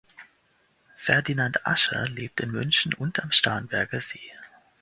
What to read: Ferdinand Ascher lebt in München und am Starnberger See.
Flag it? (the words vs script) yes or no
no